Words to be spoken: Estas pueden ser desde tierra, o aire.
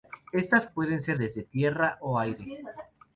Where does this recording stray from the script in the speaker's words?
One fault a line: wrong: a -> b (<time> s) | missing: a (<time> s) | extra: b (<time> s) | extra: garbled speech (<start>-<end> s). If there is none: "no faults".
no faults